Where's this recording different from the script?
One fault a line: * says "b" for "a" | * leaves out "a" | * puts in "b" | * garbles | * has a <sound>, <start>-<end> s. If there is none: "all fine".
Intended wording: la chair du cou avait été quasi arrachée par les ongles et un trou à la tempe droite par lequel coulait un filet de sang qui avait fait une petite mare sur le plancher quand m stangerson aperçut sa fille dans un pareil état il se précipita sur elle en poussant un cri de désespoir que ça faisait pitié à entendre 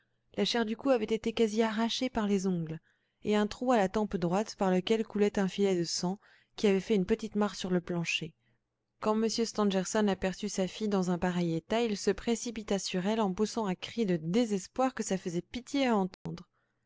* has a dropout, 16.1-16.3 s